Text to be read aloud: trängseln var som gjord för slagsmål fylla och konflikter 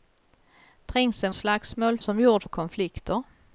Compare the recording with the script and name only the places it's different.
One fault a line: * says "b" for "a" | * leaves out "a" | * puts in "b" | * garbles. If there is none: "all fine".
* says "slagsmål" for "var"
* leaves out "för slagsmål fylla"